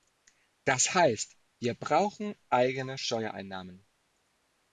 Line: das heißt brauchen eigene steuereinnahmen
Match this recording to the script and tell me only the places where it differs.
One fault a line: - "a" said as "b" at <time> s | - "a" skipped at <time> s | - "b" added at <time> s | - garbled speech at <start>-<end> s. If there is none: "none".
- "wir" added at 1.6 s